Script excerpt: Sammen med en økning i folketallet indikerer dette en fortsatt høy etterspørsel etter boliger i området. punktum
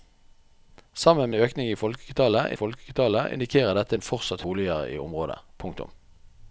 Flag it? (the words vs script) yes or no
yes